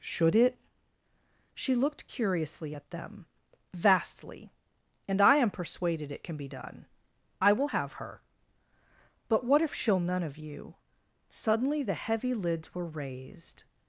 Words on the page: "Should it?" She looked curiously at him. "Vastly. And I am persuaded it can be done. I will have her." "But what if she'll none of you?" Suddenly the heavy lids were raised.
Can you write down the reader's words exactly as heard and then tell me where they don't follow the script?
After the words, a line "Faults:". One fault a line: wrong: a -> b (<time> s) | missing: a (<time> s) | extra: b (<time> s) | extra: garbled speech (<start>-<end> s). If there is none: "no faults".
"Should it?" She looked curiously at them. "Vastly. And I am persuaded it can be done. I will have her." "But what if she'll none of you?" Suddenly the heavy lids were raised.
Faults:
wrong: him -> them (2.9 s)